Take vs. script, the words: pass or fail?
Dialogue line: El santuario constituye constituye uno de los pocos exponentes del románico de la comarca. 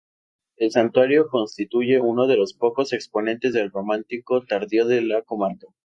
fail